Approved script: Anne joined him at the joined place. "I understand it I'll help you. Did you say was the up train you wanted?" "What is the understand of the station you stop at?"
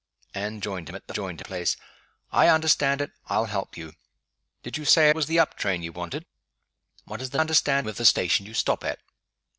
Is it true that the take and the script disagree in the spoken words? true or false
false